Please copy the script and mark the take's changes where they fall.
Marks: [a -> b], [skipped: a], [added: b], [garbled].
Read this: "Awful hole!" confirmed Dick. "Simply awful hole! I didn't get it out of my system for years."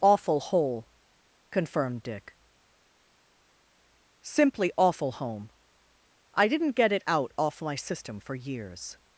"Awful hole!" confirmed Dick. "Simply awful [hole! -> home] I didn't get it out [of -> off] my system for years."